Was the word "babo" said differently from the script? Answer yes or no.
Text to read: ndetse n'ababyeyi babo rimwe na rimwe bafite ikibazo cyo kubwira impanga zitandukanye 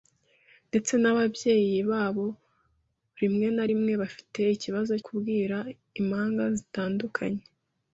no